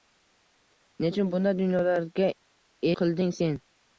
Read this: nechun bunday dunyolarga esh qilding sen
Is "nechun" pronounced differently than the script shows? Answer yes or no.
no